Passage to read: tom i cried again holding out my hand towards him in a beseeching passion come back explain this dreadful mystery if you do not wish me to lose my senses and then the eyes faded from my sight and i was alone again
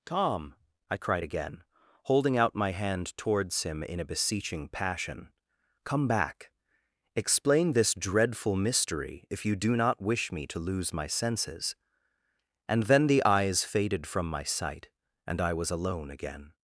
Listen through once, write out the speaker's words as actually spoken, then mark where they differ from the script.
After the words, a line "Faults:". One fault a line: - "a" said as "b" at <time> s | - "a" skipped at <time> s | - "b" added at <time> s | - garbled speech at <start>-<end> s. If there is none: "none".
tom i cried again holding out my hand towards him in a beseeching passion come back explain this dreadful mystery if you do not wish me to lose my senses and then the eyes faded from my sight and i was alone again
Faults:
none